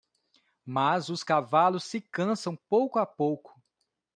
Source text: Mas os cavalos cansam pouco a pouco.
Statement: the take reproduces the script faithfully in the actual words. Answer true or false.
false